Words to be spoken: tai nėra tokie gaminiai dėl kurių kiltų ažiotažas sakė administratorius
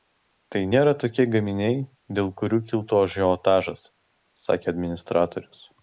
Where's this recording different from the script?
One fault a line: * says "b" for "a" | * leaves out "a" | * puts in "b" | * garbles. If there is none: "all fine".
all fine